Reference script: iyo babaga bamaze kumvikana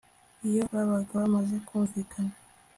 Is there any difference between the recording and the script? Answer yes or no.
no